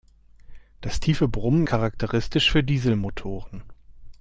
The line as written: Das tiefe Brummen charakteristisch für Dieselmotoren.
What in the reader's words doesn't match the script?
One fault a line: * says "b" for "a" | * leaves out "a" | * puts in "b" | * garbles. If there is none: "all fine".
all fine